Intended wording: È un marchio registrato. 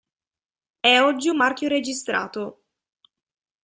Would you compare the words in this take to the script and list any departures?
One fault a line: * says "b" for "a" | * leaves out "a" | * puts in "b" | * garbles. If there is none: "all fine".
* puts in "oggi"